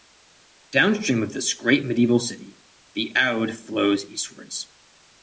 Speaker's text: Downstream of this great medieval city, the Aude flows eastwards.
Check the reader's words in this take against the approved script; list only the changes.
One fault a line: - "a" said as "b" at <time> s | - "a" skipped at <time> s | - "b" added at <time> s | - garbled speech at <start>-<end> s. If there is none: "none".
none